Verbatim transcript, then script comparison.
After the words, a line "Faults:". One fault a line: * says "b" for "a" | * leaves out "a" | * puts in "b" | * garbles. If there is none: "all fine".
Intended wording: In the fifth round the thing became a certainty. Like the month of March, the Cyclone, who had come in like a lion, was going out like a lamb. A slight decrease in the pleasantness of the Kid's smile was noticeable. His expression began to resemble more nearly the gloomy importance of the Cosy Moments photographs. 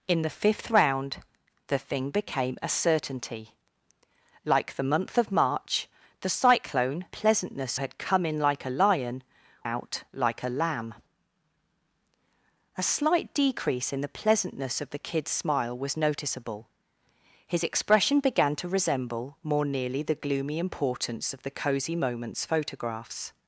In the fifth round the thing became a certainty. Like the month of March, the Cyclone, pleasantness had come in like a lion, out like a lamb. A slight decrease in the pleasantness of the Kid's smile was noticeable. His expression began to resemble more nearly the gloomy importance of the Cosy Moments photographs.
Faults:
* says "pleasantness" for "who"
* leaves out "was going"